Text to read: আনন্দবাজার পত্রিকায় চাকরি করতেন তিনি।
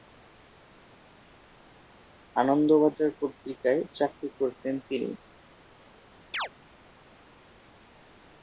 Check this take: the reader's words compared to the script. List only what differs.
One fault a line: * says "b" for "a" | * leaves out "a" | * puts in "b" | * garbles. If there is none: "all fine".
all fine